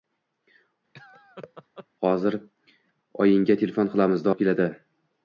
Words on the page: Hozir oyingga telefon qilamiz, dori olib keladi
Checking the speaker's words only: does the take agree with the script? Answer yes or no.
no